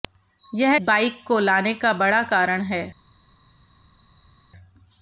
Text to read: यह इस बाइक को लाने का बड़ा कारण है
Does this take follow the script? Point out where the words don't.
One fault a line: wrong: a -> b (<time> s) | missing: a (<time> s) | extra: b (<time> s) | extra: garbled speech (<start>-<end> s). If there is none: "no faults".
missing: इस (0.8 s)